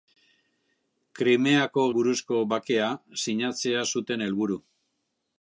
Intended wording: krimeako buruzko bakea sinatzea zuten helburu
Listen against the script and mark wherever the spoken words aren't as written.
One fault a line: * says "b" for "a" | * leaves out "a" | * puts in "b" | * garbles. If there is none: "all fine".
all fine